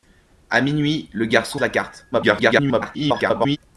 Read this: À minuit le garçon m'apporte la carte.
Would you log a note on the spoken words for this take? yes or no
yes